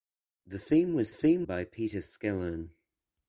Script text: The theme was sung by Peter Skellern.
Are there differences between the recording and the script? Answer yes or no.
yes